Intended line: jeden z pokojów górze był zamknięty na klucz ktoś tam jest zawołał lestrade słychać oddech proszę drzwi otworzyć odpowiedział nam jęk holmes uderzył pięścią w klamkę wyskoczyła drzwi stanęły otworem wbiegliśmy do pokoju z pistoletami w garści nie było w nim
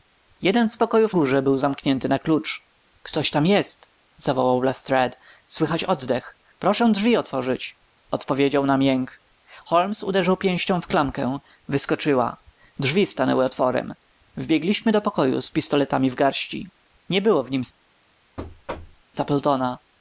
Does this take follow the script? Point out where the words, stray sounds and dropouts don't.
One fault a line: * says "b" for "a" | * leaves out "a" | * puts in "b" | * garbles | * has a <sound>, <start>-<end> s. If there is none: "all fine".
* has a thud, 18.4-19.0 s